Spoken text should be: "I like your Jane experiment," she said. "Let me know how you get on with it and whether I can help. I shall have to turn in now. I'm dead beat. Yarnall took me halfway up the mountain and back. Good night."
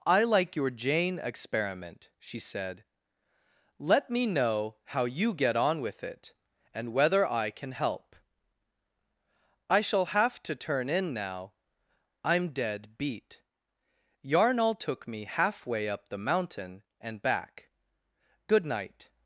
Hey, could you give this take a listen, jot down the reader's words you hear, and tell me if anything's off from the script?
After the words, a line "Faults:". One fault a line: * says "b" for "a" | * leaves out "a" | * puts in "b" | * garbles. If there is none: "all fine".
"I like your Jane experiment," she said. "Let me know how you get on with it and whether I can help. I shall have to turn in now. I'm dead beat. Yarnall took me halfway up the mountain and back. Good night."
Faults:
all fine